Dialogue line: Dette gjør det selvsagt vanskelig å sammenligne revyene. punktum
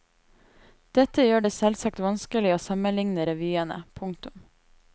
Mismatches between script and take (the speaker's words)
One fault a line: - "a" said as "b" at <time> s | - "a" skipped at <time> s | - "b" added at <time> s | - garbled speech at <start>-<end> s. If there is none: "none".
none